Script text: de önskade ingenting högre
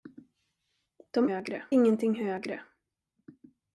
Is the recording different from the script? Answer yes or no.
yes